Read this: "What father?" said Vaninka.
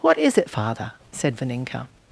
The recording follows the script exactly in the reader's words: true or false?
false